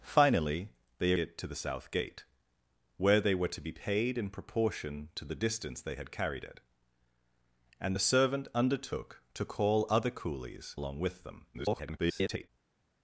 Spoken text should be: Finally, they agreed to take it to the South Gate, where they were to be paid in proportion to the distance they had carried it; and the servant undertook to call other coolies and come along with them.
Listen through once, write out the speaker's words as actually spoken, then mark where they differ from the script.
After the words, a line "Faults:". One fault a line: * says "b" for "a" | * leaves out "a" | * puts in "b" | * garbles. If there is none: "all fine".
Finally, they it to the South Gate, where they were to be paid in proportion to the distance they had carried it; and the servant undertook to call other coolies along with them. [garbled]
Faults:
* leaves out "agreed to take"
* leaves out "and come"
* garbles